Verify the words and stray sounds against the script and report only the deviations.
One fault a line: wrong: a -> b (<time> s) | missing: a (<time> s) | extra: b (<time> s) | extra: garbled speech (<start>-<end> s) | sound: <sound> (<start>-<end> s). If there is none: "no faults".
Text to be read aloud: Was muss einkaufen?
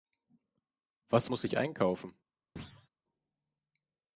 extra: ich (1.4 s)
sound: thud (2.6-2.9 s)